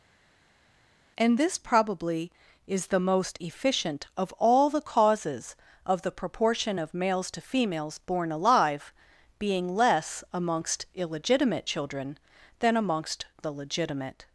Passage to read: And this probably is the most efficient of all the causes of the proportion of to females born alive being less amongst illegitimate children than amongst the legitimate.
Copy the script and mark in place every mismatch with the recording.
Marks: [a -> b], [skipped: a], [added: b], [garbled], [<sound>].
And this probably is the most efficient of all the causes of the proportion of [added: males] to females born alive being less amongst illegitimate children than amongst the legitimate.